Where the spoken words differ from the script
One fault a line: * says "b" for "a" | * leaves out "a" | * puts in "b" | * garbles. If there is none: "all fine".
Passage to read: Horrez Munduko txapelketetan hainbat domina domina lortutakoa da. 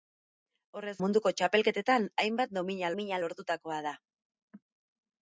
all fine